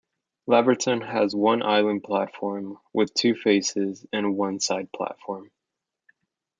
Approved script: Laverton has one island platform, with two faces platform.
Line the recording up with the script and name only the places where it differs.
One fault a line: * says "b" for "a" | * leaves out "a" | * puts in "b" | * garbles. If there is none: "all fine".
* puts in "and one side"